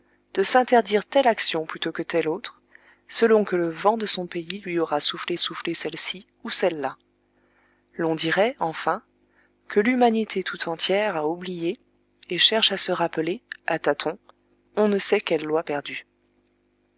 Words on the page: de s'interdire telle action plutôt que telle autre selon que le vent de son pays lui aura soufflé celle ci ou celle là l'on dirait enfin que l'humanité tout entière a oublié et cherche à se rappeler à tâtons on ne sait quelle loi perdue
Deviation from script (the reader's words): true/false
true